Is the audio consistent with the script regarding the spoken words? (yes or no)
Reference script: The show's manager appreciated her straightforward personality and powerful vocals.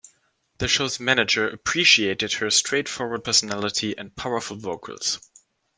yes